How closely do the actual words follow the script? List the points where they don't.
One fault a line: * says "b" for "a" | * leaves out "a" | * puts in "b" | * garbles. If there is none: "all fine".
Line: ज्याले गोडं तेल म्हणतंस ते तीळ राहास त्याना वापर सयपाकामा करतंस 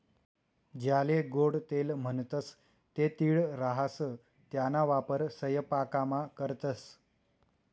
all fine